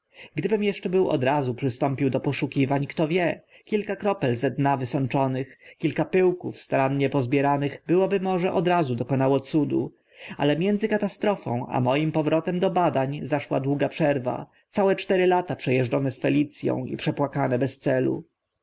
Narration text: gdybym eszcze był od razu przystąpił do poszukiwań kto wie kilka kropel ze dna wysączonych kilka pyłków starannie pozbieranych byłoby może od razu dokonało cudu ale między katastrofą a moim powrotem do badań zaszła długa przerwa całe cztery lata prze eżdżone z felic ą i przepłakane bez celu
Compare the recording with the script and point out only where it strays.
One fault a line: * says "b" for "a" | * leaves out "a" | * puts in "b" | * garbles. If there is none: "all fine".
all fine